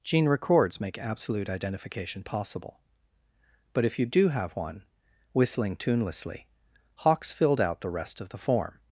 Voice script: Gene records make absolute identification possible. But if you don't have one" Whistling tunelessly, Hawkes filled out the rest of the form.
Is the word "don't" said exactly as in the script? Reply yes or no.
no